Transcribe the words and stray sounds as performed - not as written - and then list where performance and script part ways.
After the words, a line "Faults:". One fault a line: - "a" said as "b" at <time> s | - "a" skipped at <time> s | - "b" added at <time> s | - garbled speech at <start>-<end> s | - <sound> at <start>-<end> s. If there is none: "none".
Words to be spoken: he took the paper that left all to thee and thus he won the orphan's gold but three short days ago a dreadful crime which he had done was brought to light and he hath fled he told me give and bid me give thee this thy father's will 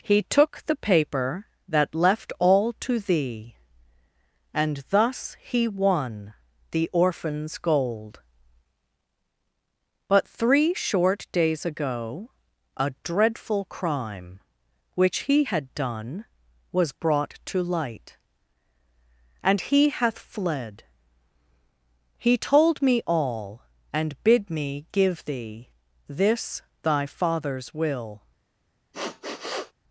he took the paper that left all to thee and thus he won the orphan's gold but three short days ago a dreadful crime which he had done was brought to light and he hath fled he told me all and bid me give thee this thy father's will
Faults:
- "give" said as "all" at 23.1 s
- sniff at 28.9-29.7 s